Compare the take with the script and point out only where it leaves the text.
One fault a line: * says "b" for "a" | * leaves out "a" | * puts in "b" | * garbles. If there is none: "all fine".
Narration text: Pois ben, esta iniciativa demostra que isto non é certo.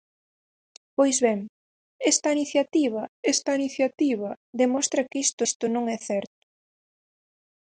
* puts in "esta iniciativa"
* puts in "isto"